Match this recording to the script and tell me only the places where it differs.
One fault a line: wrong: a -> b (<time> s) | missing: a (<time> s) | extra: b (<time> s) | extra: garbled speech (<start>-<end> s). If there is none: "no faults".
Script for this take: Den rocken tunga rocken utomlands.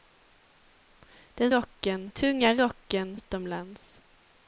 no faults